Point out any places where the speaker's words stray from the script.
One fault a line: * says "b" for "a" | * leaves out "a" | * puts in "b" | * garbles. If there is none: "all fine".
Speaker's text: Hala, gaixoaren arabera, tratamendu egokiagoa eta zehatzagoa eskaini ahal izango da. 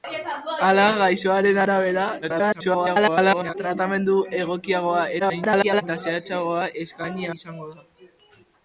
* garbles
* garbles
* leaves out "ahal"